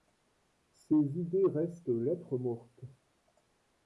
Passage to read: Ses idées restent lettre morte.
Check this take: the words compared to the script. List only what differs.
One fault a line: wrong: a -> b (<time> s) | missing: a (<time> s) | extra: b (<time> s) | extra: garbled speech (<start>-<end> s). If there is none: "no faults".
no faults